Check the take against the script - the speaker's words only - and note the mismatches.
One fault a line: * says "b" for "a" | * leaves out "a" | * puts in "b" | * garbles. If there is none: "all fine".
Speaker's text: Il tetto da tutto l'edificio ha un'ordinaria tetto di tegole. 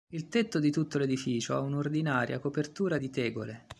* says "di" for "da"
* says "copertura" for "tetto"